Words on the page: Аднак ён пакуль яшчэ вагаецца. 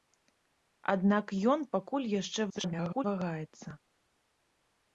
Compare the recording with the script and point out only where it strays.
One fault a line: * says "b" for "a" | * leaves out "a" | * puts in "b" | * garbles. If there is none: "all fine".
* garbles